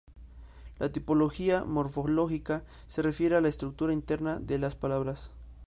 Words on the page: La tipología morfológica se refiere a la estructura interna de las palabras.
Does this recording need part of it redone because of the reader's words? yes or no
no